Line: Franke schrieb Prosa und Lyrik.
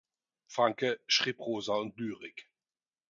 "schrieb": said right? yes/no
yes